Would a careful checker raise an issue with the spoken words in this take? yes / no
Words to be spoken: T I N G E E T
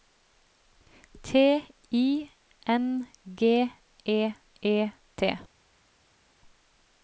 no